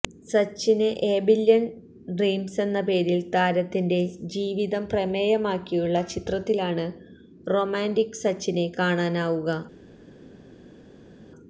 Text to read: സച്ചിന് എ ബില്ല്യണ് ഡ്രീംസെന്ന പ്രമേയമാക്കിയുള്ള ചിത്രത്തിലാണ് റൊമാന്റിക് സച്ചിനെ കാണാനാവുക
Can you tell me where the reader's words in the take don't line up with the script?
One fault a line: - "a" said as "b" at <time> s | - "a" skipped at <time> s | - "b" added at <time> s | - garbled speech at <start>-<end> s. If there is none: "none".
- "പേരില് താരത്തിന്റെ ജീവിതം" added at 2.9 s